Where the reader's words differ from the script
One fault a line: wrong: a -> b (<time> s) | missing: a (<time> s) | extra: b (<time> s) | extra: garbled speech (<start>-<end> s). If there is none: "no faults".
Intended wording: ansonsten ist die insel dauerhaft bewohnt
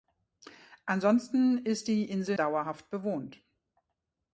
no faults